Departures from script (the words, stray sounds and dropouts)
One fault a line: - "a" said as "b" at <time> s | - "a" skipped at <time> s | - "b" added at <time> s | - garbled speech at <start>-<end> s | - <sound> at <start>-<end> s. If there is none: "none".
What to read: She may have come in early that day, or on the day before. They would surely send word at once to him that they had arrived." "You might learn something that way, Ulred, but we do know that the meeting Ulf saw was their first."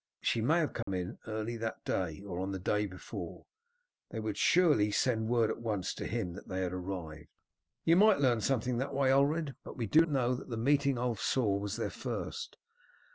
- dropout at 0.8-0.9 s